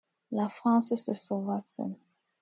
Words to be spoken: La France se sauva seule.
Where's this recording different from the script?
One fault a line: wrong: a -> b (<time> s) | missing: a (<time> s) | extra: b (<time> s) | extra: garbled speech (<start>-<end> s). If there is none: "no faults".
no faults